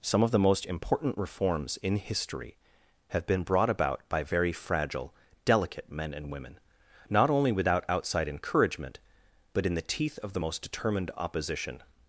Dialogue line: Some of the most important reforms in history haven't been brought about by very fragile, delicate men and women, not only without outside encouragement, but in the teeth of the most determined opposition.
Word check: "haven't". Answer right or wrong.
wrong